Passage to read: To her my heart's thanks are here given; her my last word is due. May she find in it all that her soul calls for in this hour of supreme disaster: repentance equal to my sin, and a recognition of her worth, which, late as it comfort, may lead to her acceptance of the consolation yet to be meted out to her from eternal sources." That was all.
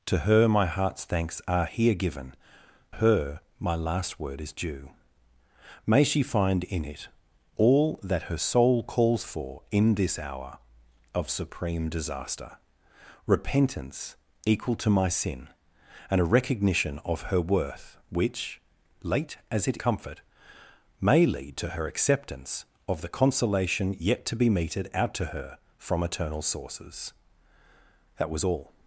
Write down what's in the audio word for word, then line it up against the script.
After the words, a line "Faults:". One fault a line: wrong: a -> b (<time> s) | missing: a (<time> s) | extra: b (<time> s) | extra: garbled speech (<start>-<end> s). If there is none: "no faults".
To her my heart's thanks are here given; her my last word is due. May she find in it all that her soul calls for in this hour of supreme disaster: repentance equal to my sin, and a recognition of her worth, which, late as it comfort, may lead to her acceptance of the consolation yet to be meted out to her from eternal sources." That was all.
Faults:
no faults